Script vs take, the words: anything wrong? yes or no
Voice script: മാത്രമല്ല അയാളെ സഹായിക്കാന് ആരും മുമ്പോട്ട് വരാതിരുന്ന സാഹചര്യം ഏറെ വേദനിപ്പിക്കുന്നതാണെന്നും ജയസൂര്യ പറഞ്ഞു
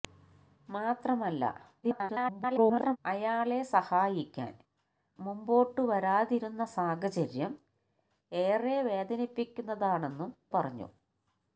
yes